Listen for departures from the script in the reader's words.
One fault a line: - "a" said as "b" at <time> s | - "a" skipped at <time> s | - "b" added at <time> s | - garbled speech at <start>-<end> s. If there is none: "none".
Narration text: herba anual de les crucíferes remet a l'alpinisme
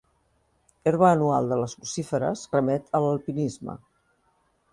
none